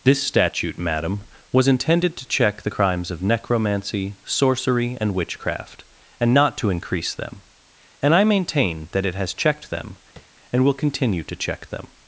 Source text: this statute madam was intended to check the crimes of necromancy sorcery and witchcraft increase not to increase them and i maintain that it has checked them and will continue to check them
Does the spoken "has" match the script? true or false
true